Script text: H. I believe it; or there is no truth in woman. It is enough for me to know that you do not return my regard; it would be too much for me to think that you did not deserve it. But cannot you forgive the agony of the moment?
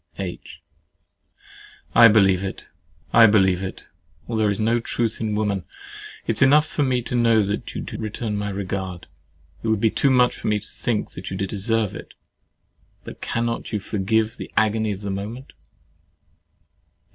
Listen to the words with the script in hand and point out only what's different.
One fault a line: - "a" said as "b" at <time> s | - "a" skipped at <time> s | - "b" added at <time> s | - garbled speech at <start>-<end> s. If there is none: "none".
- "I believe it" added at 3.1 s
- "not" skipped at 8.0 s
- "not" skipped at 11.5 s